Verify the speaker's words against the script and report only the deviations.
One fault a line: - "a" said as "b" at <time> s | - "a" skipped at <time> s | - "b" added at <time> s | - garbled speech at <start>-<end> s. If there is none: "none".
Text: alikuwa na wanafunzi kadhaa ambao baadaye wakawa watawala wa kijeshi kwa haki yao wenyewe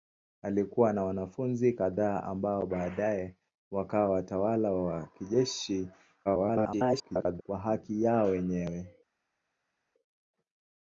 - garbled speech at 6.2-7.4 s